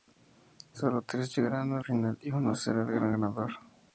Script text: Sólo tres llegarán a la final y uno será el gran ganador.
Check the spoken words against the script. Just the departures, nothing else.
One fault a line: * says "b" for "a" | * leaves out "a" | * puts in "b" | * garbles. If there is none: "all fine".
* leaves out "la"